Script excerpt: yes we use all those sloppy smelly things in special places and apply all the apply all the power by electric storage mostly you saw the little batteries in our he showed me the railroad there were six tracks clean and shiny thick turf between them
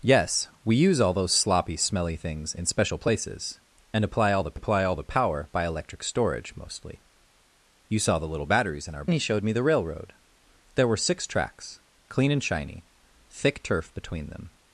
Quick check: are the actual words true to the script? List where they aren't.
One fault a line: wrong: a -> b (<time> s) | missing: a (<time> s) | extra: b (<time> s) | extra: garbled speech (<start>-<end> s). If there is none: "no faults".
no faults